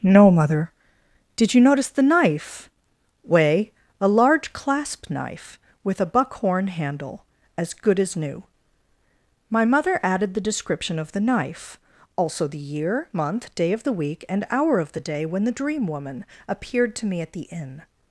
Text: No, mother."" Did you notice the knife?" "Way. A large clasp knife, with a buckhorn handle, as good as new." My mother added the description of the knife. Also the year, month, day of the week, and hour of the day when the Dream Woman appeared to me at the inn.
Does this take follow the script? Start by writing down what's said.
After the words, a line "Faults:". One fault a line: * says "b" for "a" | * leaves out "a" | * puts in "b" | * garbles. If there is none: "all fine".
No, mother."" Did you notice the knife?" "Way. A large clasp knife, with a buckhorn handle, as good as new." My mother added the description of the knife. Also the year, month, day of the week, and hour of the day when the Dream Woman appeared to me at the inn.
Faults:
all fine